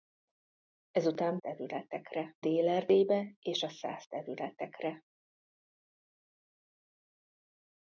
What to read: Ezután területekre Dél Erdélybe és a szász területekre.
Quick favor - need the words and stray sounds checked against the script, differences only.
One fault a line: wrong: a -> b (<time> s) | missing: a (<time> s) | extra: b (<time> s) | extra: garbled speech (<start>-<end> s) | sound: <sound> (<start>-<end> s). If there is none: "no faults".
no faults